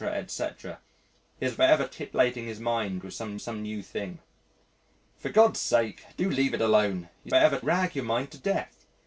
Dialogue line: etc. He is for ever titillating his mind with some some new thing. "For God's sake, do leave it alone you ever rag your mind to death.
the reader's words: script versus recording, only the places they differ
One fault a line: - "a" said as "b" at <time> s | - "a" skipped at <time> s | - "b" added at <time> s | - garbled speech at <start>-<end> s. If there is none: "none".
none